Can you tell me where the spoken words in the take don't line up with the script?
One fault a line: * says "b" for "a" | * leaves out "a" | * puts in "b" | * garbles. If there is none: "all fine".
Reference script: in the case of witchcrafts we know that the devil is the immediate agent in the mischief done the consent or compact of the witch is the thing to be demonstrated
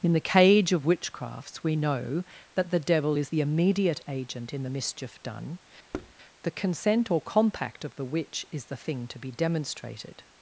* says "cage" for "case"